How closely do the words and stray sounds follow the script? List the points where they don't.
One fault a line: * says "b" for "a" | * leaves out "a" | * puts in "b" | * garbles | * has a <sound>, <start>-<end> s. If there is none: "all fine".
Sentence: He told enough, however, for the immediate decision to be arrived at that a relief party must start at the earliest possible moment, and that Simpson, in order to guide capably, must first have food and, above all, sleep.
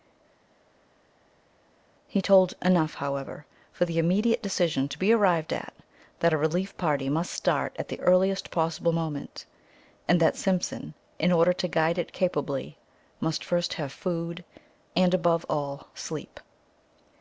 * puts in "it"